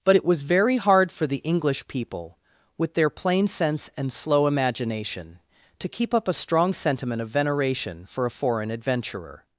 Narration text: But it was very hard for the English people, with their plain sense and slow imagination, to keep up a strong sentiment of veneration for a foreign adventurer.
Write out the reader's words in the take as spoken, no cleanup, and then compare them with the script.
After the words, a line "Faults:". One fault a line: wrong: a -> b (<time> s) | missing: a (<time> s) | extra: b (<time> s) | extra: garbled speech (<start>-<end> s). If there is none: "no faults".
But it was very hard for the English people, with their plain sense and slow imagination, to keep up a strong sentiment of veneration for a foreign adventurer.
Faults:
no faults